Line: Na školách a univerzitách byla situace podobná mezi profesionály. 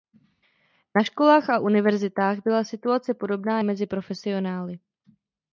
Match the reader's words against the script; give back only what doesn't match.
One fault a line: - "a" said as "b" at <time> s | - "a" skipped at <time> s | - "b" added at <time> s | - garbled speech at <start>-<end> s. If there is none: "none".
none